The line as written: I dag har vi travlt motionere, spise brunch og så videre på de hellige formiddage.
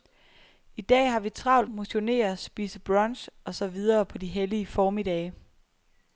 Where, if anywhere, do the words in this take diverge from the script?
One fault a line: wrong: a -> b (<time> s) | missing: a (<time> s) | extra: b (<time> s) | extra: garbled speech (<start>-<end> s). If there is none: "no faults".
no faults